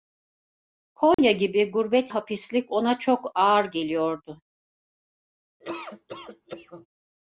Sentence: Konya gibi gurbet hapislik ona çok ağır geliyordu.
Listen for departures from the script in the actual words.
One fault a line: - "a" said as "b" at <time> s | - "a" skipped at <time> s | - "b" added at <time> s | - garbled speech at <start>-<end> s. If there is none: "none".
none